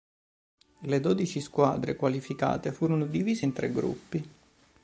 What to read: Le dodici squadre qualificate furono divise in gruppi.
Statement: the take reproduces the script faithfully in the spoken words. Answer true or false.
false